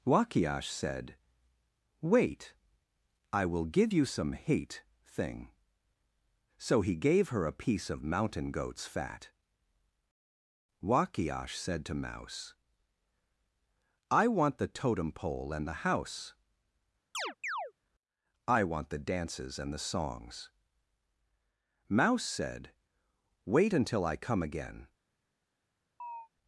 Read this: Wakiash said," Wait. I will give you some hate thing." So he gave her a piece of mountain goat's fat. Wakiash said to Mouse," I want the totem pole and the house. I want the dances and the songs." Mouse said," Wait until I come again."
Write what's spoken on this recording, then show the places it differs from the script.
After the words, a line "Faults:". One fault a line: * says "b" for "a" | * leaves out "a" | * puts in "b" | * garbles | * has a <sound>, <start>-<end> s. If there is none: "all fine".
Wakiash said," Wait. I will give you some hate thing." So he gave her a piece of mountain goat's fat. Wakiash said to Mouse," I want the totem pole and the house. I want the dances and the songs." Mouse said," Wait until I come again."
Faults:
* has a chirp, 17.1-17.7 s
* has a chirp, 26.0-26.3 s